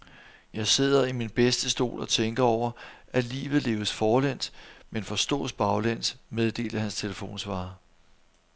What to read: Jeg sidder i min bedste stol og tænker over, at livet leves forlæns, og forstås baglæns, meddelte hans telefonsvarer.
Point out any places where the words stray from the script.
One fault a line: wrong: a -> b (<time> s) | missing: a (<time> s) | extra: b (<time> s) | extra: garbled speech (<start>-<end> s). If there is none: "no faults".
wrong: og -> men (4.9 s)